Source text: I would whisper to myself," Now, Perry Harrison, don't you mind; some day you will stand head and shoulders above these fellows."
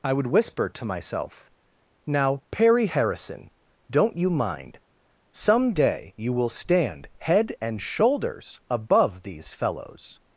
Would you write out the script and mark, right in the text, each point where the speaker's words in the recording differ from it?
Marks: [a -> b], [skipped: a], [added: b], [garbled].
I would whisper to myself," Now, Perry Harrison, don't you mind; some day you will stand head and shoulders above these fellows."